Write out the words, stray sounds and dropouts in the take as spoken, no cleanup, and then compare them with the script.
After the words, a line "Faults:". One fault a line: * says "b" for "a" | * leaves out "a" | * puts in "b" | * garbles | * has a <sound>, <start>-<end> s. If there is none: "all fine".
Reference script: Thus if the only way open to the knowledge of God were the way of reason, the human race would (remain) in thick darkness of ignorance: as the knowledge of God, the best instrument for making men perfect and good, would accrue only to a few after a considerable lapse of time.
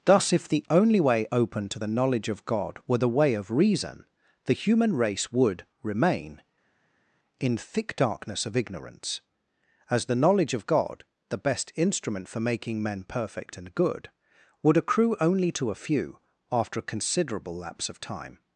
Thus if the only way open to the knowledge of God were the way of reason, the human race would (remain) in thick darkness of ignorance: as the knowledge of God, the best instrument for making men perfect and good, would accrue only to a few after a considerable lapse of time.
Faults:
all fine